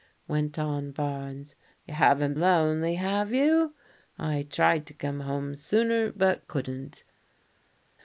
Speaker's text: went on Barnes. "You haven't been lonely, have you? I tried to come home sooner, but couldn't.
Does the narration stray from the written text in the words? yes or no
yes